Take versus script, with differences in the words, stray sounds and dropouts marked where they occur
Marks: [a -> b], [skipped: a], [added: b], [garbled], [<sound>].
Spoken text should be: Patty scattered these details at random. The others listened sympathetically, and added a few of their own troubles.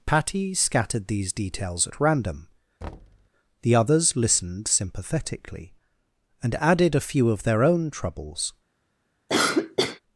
Patty scattered these details at random. [thud] The others listened sympathetically, and added a few of their own troubles. [cough]